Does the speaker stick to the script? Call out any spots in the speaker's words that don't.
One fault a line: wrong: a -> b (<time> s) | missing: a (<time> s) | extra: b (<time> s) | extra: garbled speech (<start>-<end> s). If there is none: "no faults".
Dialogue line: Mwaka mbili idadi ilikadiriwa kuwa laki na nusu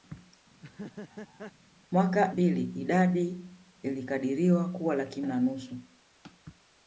no faults